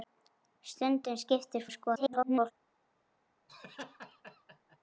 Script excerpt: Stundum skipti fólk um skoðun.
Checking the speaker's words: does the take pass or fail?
fail